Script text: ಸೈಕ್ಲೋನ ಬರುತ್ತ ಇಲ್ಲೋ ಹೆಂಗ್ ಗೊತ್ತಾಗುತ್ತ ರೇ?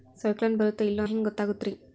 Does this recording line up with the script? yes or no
yes